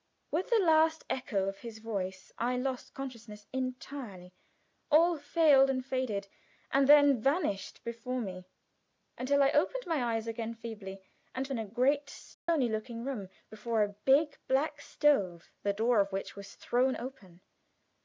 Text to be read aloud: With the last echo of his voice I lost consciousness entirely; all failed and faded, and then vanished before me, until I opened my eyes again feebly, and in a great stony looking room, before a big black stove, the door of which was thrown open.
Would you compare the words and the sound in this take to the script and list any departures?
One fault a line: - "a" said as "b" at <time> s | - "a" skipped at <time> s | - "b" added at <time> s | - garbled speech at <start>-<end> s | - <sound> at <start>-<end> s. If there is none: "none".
- dropout at 12.3-12.5 s